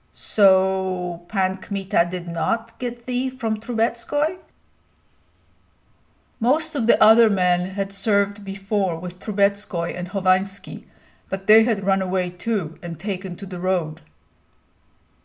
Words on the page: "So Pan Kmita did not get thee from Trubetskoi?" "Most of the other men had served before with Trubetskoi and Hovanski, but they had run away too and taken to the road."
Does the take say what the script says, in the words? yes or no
yes